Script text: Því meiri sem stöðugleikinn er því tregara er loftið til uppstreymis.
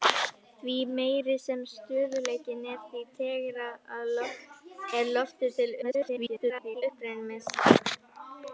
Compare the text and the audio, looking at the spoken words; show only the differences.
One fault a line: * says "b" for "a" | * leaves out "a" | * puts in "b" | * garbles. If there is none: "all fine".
* garbles